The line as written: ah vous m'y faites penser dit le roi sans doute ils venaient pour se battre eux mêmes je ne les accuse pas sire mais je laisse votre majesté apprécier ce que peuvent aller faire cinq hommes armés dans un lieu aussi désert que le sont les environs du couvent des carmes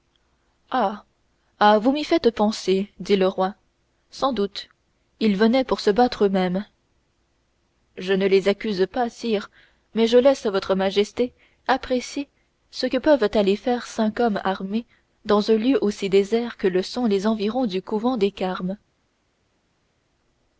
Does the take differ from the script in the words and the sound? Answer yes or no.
no